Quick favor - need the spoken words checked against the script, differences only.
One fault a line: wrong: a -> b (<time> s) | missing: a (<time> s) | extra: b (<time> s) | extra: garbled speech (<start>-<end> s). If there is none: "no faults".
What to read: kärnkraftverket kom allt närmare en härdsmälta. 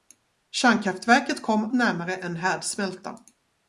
missing: allt (1.7 s)